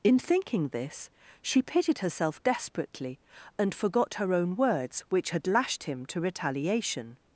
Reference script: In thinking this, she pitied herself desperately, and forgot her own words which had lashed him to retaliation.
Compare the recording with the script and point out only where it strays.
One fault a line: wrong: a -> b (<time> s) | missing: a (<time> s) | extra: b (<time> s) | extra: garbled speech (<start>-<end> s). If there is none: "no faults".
no faults